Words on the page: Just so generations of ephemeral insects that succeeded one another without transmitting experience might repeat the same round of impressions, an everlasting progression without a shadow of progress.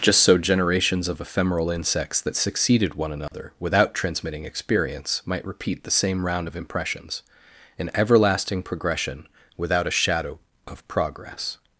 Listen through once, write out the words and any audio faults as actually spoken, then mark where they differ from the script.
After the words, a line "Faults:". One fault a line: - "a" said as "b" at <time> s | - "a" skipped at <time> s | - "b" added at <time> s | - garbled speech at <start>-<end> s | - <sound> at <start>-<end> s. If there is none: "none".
Just so generations of ephemeral insects that succeeded one another without transmitting experience might repeat the same round of impressions, an everlasting progression without a shadow of progress.
Faults:
- dropout at 3.3-3.3 s